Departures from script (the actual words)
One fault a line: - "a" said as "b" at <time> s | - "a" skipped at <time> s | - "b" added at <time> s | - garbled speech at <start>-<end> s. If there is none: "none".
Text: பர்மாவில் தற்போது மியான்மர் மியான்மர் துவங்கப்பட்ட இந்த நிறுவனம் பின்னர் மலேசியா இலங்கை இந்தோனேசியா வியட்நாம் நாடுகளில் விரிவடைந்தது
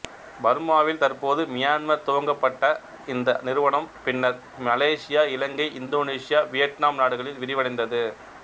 - "மியான்மர்" skipped at 2.1 s